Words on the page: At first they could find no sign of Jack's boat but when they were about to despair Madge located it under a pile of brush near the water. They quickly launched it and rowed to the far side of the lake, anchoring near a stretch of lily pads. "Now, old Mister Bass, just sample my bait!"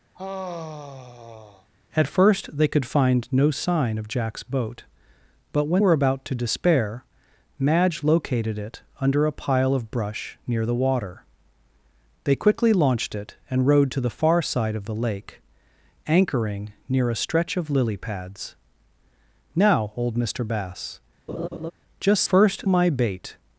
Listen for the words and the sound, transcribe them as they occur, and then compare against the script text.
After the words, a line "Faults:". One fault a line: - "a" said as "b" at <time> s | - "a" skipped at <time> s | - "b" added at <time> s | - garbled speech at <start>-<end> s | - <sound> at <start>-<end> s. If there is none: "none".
At first they could find no sign of Jack's boat but when were about to despair Madge located it under a pile of brush near the water. They quickly launched it and rowed to the far side of the lake, anchoring near a stretch of lily pads. "Now, old Mister Bass, just first my bait!"
Faults:
- sigh at 0.1-1.7 s
- "they" skipped at 5.8 s
- laugh at 21.3-21.7 s
- "sample" said as "first" at 22.2 s